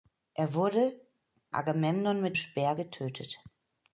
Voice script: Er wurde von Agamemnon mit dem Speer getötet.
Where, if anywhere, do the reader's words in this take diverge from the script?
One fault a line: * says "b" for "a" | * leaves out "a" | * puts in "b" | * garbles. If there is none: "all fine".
* leaves out "von"
* leaves out "dem"